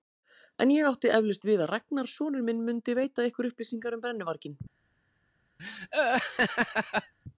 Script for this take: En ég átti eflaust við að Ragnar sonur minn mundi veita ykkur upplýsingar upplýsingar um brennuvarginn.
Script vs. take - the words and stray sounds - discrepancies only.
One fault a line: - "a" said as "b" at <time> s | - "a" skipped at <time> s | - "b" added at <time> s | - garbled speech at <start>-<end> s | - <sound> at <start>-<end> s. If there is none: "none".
- "upplýsingar" skipped at 4.0 s
- laugh at 5.6-7.1 s